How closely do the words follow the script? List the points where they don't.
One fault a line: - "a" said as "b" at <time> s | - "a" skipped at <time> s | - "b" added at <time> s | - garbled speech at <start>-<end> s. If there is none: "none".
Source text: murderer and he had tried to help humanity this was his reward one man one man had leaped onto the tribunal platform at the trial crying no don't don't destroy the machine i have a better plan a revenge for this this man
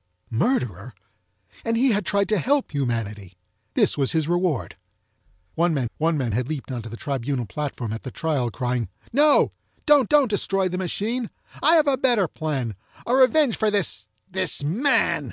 none